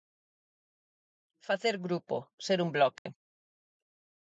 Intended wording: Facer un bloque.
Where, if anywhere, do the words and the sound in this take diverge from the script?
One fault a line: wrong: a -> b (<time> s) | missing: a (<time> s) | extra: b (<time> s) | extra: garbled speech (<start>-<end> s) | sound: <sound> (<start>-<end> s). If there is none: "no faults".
extra: grupo ser (1.8 s)
sound: dropout (3.0-3.1 s)